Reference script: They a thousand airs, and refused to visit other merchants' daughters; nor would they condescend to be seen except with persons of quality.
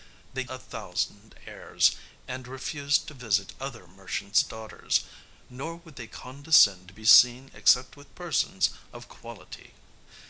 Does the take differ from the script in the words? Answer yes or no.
no